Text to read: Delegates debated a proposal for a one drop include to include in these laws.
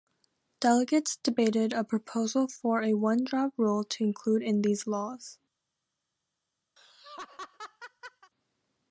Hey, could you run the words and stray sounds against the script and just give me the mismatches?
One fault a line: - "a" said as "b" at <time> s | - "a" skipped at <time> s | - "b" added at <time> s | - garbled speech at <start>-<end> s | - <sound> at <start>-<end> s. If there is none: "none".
- "include" said as "rule" at 3.6 s
- laugh at 6.8-8.3 s